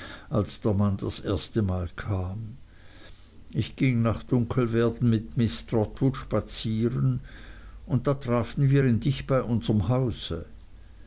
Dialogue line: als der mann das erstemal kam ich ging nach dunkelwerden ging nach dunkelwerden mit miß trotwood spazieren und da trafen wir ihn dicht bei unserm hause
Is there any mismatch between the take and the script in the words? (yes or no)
yes